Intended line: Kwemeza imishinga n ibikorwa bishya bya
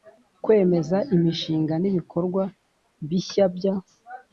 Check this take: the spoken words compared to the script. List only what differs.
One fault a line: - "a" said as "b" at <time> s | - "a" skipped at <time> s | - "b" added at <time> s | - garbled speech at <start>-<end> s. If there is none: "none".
none